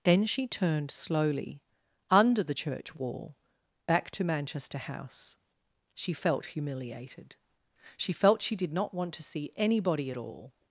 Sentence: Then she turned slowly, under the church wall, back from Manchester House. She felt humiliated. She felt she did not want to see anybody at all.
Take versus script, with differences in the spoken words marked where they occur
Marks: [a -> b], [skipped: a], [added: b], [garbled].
Then she turned slowly, under the church wall, back [from -> to] Manchester House. She felt humiliated. She felt she did not want to see anybody at all.